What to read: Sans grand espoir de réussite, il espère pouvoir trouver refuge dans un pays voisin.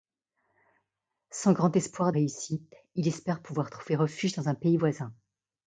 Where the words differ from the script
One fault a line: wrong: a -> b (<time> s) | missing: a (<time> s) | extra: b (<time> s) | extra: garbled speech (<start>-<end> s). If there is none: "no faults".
missing: de (2.1 s)